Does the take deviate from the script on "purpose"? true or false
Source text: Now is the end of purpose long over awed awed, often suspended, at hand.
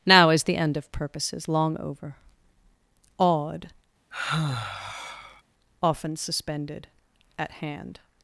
true